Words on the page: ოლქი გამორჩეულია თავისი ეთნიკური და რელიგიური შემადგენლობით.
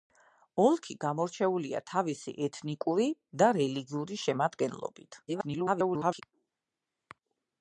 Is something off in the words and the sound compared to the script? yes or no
yes